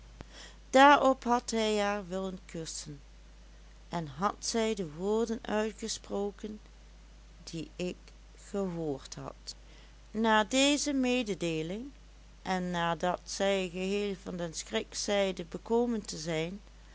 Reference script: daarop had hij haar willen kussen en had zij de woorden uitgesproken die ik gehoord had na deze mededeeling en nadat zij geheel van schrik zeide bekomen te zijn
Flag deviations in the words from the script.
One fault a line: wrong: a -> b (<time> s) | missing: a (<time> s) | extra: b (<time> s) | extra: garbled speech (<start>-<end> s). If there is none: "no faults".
extra: den (14.4 s)